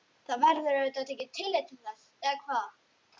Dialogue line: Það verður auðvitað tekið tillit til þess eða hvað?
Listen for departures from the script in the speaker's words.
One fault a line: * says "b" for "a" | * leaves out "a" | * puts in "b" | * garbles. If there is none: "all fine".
all fine